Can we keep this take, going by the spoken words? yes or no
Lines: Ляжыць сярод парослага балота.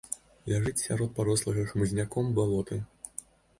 no